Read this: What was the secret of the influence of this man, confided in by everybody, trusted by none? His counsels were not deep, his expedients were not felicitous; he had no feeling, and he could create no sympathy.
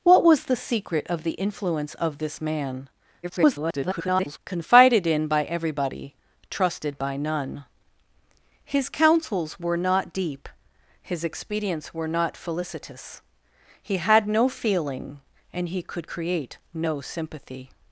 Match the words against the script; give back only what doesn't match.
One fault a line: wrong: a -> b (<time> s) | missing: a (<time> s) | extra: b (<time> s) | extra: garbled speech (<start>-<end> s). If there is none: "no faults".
extra: garbled speech (3.2-4.4 s)